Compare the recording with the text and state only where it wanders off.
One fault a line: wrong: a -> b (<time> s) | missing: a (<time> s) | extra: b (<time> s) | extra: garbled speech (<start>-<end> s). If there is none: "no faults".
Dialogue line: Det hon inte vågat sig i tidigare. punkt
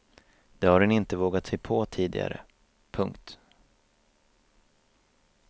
extra: har (0.7 s)
wrong: i -> på (1.6 s)